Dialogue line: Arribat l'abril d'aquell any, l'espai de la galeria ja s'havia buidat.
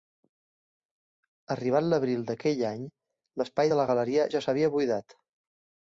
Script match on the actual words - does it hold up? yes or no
yes